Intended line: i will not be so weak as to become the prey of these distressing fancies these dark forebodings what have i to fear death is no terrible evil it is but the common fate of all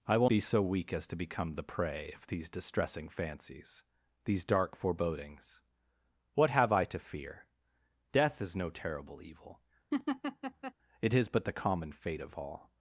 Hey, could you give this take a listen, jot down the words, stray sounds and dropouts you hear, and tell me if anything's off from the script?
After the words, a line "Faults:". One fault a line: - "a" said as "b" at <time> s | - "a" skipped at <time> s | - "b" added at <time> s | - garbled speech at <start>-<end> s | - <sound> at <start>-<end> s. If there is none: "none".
i will be so weak as to become the prey of these distressing fancies these dark forebodings what have i to fear death is no terrible evil it is but the common fate of all
Faults:
- "not" skipped at 0.3 s
- laugh at 9.9-10.7 s